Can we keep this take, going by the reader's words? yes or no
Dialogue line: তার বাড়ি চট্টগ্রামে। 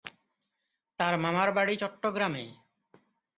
no